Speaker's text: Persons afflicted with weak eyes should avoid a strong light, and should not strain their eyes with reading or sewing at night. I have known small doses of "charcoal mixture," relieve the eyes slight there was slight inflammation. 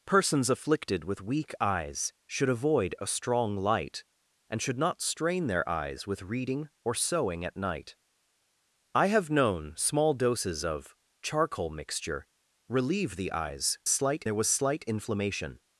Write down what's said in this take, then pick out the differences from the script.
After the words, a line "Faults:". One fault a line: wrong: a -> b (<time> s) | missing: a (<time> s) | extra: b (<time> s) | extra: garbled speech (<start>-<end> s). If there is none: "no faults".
Persons afflicted with weak eyes should avoid a strong light, and should not strain their eyes with reading or sewing at night. I have known small doses of "charcoal mixture," relieve the eyes slight there was slight inflammation.
Faults:
no faults